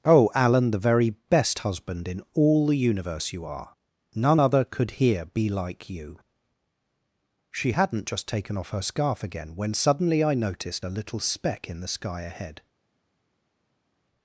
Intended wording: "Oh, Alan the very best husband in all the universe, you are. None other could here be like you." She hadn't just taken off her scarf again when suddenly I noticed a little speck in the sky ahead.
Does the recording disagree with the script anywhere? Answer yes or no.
no